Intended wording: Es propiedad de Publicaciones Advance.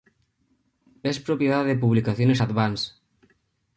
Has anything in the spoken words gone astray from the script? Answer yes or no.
no